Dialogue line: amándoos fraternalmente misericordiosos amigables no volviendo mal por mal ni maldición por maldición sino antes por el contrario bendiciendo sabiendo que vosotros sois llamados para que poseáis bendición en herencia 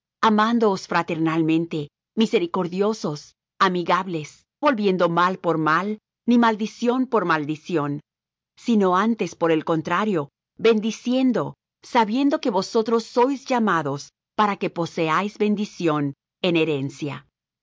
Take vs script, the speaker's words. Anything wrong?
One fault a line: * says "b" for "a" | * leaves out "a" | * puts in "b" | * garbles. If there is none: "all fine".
* leaves out "no"